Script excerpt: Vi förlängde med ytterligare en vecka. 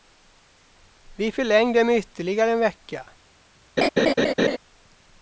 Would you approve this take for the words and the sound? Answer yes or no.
no